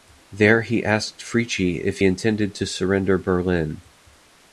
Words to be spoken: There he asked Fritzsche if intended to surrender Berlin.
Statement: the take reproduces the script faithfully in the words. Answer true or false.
true